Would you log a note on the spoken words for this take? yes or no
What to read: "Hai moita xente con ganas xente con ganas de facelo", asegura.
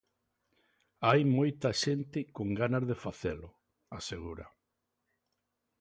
yes